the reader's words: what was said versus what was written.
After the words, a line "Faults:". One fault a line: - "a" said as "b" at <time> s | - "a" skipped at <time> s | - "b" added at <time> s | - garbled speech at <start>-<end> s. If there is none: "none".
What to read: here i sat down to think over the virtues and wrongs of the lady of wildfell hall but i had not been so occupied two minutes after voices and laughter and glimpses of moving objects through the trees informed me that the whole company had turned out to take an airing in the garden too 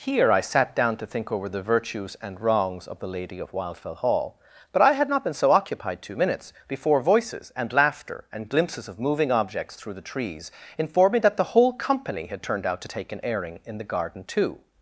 here i sat down to think over the virtues and wrongs of the lady of wildfell hall but i had not been so occupied two minutes before voices and laughter and glimpses of moving objects through the trees informed me that the whole company had turned out to take an airing in the garden too
Faults:
- "after" said as "before" at 6.7 s